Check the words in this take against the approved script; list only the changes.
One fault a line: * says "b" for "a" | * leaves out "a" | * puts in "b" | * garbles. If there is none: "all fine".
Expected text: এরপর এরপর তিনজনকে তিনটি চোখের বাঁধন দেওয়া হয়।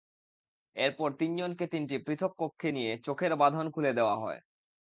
* leaves out "এরপর"
* puts in "পৃথক কক্ষে নিয়ে"
* puts in "খুলে"